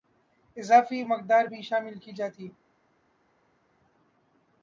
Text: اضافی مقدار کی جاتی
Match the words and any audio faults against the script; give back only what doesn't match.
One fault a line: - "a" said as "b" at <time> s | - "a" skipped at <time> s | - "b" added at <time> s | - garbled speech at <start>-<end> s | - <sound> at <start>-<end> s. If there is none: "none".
- "بھی شامل" added at 1.4 s